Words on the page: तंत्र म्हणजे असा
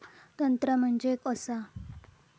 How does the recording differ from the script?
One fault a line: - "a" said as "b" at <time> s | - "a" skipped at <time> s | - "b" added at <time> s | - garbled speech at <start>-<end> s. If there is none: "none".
none